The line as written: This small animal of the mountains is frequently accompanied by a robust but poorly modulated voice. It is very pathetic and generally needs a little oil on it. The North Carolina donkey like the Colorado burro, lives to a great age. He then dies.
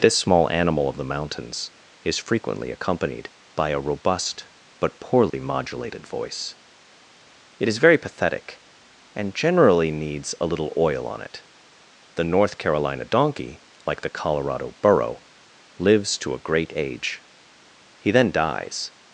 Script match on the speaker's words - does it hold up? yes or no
yes